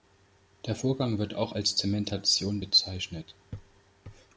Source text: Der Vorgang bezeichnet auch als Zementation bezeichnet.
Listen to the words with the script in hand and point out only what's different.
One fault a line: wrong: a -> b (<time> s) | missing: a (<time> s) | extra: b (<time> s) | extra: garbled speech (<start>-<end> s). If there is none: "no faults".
wrong: bezeichnet -> wird (1.2 s)